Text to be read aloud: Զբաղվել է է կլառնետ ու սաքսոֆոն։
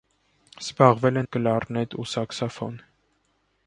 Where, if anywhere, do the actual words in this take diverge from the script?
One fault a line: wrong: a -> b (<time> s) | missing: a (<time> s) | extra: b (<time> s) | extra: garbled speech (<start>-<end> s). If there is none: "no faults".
no faults